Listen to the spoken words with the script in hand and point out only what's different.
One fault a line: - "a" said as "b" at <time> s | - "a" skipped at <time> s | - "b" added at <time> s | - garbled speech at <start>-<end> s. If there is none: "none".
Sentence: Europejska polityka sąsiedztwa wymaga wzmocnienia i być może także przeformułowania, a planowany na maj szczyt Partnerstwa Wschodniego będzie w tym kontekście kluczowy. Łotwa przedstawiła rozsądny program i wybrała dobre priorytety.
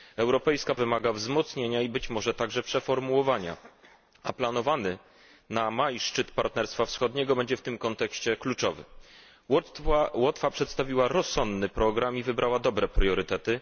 - "polityka sąsiedztwa" skipped at 0.8 s